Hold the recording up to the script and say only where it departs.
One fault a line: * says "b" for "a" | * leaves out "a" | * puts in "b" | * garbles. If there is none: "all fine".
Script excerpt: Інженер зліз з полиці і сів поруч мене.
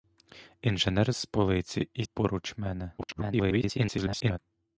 * leaves out "зліз"
* leaves out "сів"
* garbles